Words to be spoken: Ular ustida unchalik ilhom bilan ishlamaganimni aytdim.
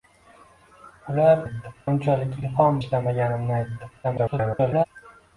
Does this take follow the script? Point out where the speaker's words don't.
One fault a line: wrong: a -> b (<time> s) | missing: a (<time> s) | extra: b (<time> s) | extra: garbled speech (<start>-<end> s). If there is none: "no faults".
wrong: ustida -> aytdim (1.4 s)
missing: bilan (2.8 s)
extra: garbled speech (4.0-4.9 s)